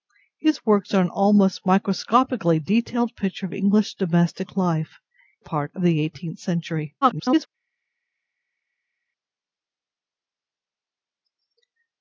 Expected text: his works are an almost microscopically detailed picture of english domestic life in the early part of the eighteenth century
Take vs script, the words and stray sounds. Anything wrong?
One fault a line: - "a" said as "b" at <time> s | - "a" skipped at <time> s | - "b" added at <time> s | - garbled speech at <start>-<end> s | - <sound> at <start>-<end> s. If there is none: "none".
- "in the early" skipped at 5.0 s
- garbled speech at 7.0-7.5 s